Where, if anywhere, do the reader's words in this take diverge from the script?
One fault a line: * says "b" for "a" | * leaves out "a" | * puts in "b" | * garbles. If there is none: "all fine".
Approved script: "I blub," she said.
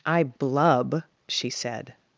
all fine